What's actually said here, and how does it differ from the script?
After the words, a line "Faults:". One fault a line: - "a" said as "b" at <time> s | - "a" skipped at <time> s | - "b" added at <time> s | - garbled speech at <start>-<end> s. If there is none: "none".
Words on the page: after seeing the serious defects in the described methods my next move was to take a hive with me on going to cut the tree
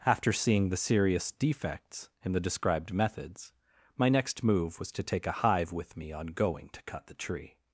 after seeing the serious defects in the described methods my next move was to take a hive with me on going to cut the tree
Faults:
none